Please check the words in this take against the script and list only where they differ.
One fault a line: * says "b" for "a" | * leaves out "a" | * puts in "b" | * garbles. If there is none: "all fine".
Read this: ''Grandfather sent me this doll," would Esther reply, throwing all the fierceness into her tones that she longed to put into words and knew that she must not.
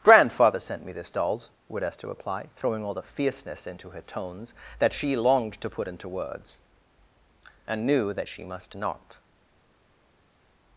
* says "dolls" for "doll"